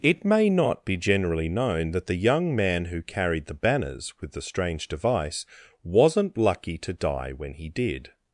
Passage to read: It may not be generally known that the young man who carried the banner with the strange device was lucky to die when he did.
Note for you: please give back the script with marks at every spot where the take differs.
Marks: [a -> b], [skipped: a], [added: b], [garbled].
It may not be generally known that the young man who carried the [banner -> banners] with the strange device [was -> wasn't] lucky to die when he did.